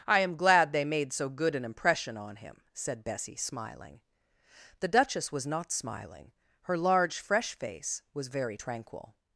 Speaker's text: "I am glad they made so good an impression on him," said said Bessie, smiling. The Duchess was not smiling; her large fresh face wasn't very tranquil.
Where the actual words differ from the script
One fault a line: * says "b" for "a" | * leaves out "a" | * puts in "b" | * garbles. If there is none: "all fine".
* leaves out "said"
* says "was" for "wasn't"